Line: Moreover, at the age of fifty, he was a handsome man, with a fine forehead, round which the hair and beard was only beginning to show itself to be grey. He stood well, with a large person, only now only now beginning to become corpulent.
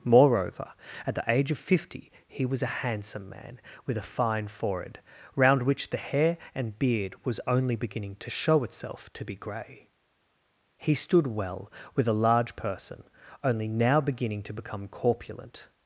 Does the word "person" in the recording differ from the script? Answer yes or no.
no